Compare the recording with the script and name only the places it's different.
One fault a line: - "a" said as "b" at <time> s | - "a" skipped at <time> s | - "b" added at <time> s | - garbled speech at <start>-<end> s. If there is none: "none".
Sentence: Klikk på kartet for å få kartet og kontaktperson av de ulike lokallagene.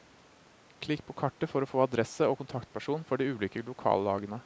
- "kartet" said as "adresse" at 1.8 s
- "av" said as "for" at 3.1 s